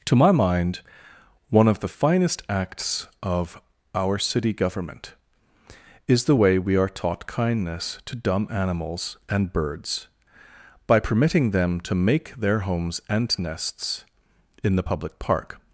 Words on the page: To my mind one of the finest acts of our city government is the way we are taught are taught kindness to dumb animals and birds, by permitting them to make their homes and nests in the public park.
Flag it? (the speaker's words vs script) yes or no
yes